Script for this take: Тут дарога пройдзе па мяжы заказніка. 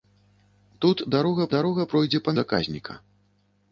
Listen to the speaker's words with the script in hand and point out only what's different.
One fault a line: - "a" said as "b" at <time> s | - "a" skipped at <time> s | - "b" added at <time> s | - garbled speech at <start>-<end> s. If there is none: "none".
- "дарога" added at 1.6 s
- "мяжы" skipped at 2.4 s